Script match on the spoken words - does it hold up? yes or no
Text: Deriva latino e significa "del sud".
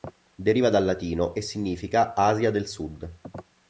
no